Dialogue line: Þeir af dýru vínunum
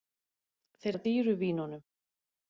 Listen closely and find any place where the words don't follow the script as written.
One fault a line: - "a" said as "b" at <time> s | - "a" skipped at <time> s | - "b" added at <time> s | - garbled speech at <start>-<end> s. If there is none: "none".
none